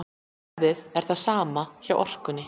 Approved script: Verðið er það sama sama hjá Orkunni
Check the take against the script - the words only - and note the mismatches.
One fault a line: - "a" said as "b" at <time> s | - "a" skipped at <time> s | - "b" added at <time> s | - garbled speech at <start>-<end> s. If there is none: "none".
- "sama" skipped at 1.6 s